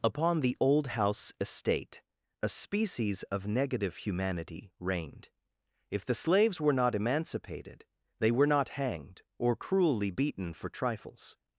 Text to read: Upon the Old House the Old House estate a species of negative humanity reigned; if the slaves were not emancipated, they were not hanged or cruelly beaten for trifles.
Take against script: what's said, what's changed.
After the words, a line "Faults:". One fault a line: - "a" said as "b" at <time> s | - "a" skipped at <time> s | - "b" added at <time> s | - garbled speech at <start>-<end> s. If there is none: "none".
Upon the Old House estate a species of negative humanity reigned; if the slaves were not emancipated, they were not hanged or cruelly beaten for trifles.
Faults:
- "the Old House" skipped at 1.3 s